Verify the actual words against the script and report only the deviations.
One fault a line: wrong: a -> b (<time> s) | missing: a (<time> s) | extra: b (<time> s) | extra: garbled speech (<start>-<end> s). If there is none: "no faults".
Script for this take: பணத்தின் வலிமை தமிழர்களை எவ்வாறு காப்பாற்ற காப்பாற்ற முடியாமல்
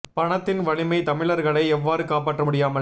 missing: காப்பாற்ற (2.4 s)